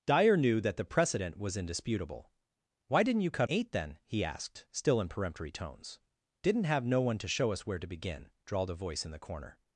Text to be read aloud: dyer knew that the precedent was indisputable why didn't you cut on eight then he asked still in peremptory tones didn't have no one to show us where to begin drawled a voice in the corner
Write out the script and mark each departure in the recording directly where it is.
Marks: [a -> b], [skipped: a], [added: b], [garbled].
dyer knew that the precedent was indisputable why didn't you cut [skipped: on] eight then he asked still in peremptory tones didn't have no one to show us where to begin drawled a voice in the corner